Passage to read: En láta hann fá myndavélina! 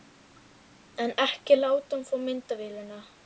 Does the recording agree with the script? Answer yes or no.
no